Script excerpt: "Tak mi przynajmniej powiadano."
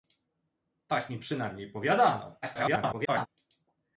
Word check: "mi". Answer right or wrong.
right